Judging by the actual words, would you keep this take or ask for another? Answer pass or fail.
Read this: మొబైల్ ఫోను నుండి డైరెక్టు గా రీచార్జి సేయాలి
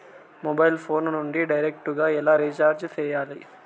fail